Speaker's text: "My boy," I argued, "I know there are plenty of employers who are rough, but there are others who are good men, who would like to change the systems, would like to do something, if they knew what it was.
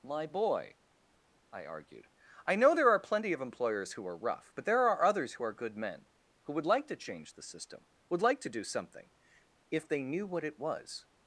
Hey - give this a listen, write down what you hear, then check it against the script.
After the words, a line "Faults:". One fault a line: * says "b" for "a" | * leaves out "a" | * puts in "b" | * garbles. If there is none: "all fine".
"My boy," I argued, "I know there are plenty of employers who are rough, but there are others who are good men, who would like to change the system, would like to do something, if they knew what it was.
Faults:
* says "system" for "systems"